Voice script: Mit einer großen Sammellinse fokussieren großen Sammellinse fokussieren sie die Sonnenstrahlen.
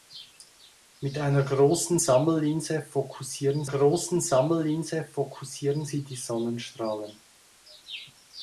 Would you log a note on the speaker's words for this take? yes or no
no